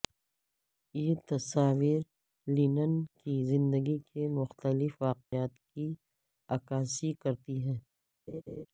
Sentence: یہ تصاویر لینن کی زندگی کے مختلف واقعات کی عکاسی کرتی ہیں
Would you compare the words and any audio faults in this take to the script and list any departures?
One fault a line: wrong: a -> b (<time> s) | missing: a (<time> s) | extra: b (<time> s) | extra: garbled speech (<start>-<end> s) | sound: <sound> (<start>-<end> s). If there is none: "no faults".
sound: dropout (5.3-5.3 s)
sound: laugh (8.3-8.7 s)